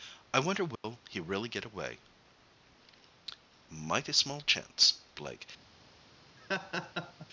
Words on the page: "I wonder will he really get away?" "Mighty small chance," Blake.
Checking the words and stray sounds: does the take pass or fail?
fail